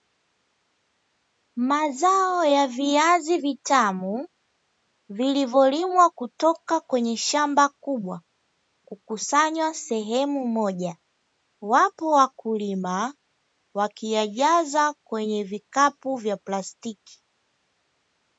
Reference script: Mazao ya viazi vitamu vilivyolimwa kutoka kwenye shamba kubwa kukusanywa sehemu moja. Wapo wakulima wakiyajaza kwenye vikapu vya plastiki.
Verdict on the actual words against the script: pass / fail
pass